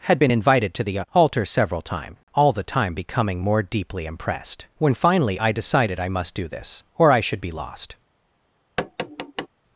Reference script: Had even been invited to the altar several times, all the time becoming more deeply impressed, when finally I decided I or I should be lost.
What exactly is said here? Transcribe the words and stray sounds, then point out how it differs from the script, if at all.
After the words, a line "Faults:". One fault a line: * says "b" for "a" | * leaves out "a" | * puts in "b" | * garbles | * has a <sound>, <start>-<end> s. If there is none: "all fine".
Had been invited to the altar several times, all the time becoming more deeply impressed, when finally I decided I must do this, or I should be lost.
Faults:
* leaves out "even"
* puts in "must do this"
* has a tap, 8.8-9.5 s